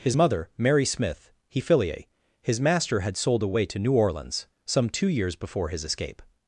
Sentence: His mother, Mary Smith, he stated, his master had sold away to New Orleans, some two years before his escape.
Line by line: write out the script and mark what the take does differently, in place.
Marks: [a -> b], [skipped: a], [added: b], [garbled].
His mother, Mary Smith, he [stated, -> filiae] his master had sold away to New Orleans, some two years before his escape.